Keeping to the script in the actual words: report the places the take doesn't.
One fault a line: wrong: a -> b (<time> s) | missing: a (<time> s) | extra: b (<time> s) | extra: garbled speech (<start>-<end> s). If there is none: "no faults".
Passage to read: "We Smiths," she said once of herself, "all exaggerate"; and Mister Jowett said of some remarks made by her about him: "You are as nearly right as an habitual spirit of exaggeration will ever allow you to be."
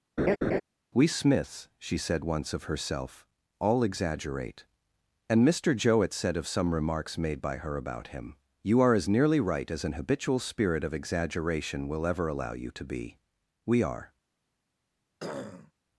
extra: We are (13.7 s)